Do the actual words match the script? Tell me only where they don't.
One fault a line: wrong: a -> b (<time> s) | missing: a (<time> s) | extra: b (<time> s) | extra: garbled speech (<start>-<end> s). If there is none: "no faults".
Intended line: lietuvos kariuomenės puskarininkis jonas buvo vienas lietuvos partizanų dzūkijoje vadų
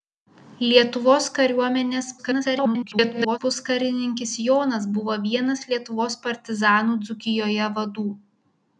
extra: garbled speech (2.2-3.4 s)